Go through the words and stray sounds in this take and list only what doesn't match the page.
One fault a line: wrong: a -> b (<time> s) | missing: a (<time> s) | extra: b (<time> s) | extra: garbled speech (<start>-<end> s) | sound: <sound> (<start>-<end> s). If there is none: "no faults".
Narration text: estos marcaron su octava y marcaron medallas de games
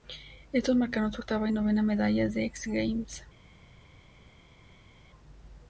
wrong: marcaron -> novena (1.5 s)
extra: x (2.4 s)